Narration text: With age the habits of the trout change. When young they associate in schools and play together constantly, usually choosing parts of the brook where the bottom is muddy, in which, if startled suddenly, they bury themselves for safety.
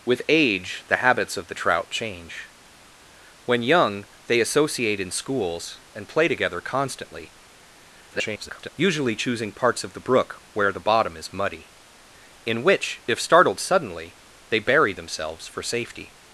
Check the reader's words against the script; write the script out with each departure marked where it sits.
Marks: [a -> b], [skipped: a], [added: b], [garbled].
With age the habits of the trout change. When young they associate in schools and play together constantly, [garbled] usually choosing parts of the brook where the bottom is muddy, in which, if startled suddenly, they bury themselves for safety.